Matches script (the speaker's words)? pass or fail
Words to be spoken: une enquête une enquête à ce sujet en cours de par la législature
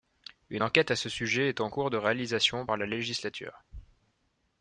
fail